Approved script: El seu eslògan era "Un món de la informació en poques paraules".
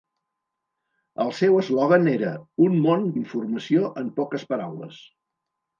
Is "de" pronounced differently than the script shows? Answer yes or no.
yes